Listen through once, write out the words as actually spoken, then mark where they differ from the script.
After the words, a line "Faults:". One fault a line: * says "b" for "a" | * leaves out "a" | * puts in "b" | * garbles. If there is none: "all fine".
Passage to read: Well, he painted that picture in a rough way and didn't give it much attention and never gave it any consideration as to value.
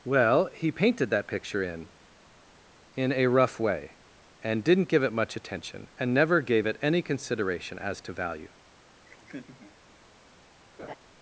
Well, he painted that picture in in a rough way and didn't give it much attention and never gave it any consideration as to value.
Faults:
* puts in "in"